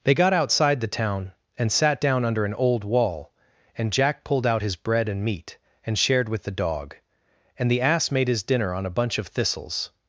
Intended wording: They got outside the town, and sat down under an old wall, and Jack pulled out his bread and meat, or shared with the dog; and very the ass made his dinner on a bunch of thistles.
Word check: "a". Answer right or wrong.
right